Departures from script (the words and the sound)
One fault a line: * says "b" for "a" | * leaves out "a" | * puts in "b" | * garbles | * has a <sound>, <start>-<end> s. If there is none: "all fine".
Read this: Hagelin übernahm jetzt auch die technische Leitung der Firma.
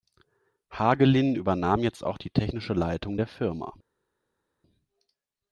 all fine